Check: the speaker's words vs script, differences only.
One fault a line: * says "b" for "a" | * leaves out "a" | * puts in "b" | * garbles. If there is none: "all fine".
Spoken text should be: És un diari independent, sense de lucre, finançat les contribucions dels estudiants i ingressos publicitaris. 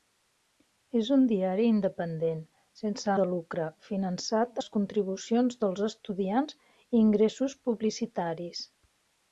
all fine